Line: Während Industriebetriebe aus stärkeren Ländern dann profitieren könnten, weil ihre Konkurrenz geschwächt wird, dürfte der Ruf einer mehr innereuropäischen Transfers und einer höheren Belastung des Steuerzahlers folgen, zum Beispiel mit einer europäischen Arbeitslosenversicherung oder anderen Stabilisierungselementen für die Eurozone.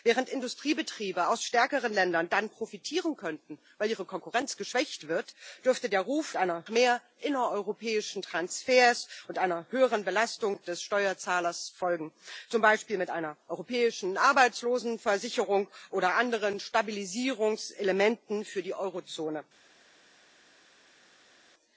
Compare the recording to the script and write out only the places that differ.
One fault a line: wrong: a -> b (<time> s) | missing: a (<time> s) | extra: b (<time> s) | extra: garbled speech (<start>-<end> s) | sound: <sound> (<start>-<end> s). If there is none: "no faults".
no faults